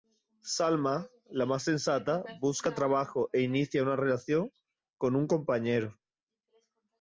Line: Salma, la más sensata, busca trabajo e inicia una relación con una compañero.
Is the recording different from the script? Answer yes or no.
yes